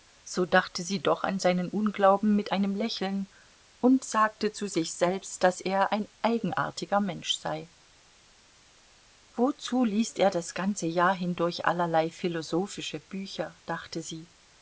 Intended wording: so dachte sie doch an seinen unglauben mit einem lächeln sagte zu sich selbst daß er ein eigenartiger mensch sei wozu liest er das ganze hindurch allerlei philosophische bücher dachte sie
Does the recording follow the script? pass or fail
fail